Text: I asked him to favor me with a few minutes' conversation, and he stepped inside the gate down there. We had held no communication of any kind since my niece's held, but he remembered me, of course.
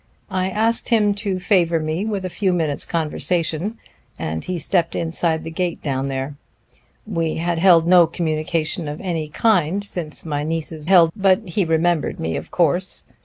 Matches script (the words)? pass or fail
pass